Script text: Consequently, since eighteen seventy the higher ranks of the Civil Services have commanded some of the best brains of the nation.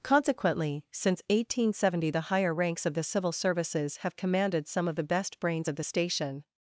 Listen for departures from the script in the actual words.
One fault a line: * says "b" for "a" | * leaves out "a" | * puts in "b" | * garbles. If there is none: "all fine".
* says "station" for "nation"